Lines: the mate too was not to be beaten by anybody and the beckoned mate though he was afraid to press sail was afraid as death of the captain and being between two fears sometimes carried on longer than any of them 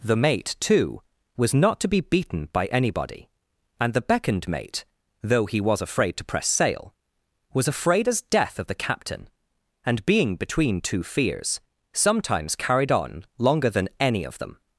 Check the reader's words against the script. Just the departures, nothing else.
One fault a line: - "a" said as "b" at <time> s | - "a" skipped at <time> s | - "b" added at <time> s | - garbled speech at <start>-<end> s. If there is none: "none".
none